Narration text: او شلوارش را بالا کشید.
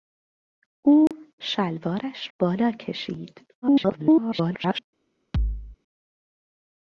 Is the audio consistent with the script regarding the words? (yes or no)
no